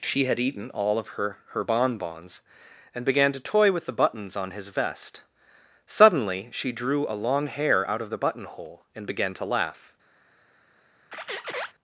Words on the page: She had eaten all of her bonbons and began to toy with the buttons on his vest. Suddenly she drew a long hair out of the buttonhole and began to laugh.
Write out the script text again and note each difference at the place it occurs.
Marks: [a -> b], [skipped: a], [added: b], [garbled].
She had eaten all of her [added: her] bonbons and began to toy with the buttons on his vest. Suddenly she drew a long hair out of the buttonhole and began to laugh.